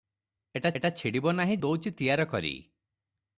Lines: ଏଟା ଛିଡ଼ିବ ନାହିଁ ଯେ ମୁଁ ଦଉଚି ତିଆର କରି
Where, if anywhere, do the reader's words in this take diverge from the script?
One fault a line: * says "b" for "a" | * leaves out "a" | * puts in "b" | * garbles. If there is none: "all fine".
* puts in "ଏଟା"
* leaves out "ଯେ ମୁଁ"